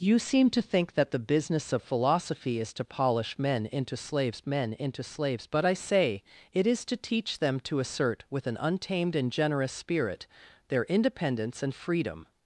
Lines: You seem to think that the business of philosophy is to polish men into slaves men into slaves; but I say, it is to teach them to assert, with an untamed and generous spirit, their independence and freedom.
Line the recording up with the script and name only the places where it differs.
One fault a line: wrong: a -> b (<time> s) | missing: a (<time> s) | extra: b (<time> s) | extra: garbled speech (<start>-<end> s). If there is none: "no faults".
no faults